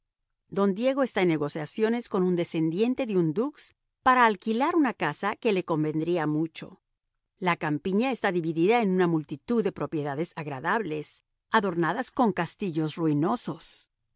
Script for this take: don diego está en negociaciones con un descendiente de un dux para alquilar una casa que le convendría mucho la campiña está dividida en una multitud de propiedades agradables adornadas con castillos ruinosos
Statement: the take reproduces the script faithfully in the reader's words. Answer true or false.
true